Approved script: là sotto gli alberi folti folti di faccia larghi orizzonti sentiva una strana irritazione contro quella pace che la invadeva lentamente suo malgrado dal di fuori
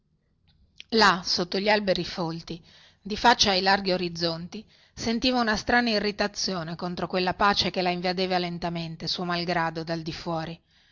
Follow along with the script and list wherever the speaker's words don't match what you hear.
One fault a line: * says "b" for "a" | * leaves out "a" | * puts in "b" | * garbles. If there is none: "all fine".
* leaves out "folti"
* puts in "ai"